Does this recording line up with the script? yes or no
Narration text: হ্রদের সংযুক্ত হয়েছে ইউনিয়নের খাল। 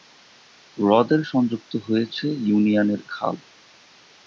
yes